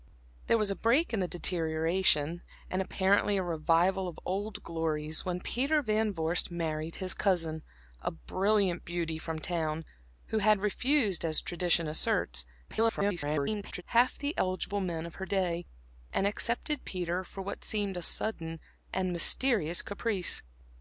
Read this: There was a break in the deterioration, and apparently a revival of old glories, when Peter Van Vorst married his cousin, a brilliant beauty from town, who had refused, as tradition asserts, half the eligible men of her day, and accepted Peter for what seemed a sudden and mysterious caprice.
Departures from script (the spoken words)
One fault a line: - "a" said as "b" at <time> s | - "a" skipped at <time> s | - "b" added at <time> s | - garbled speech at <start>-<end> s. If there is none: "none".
- garbled speech at 12.7-13.8 s